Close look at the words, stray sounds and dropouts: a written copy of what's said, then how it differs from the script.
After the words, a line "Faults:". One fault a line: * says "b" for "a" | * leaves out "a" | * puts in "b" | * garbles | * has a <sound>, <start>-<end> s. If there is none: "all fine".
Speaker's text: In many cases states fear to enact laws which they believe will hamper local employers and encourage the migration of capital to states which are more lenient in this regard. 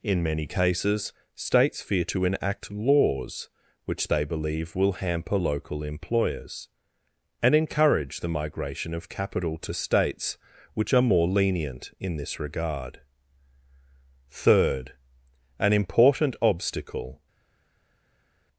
In many cases states fear to enact laws which they believe will hamper local employers and encourage the migration of capital to states which are more lenient in this regard. Third, an important obstacle
Faults:
* puts in "Third an important obstacle"